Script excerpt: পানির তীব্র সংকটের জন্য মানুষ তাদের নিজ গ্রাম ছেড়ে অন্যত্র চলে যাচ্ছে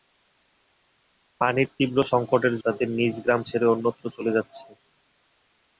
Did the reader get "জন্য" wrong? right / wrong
wrong